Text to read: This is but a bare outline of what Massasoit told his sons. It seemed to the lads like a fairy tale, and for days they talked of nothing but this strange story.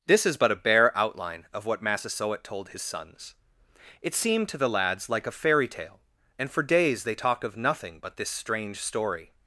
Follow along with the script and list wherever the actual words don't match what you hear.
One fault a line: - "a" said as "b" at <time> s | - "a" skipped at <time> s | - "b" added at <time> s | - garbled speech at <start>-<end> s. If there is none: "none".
none